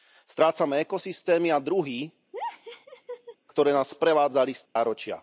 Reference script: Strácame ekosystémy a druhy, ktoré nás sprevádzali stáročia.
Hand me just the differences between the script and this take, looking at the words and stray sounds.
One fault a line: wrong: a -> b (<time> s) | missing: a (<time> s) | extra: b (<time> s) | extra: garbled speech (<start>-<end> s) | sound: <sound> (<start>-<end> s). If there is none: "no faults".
sound: laugh (2.3-3.4 s)
sound: dropout (4.7-4.8 s)